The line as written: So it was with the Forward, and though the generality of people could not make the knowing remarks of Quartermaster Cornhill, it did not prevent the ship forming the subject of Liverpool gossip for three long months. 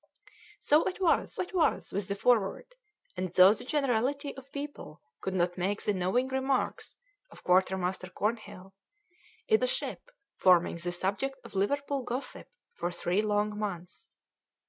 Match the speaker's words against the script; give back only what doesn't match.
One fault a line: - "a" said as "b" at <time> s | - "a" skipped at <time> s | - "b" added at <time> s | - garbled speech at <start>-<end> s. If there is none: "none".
- "it was" added at 1.4 s
- "did not prevent" skipped at 9.6 s